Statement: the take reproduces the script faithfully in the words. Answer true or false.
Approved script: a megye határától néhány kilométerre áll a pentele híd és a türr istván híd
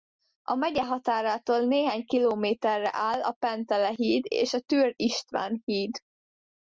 true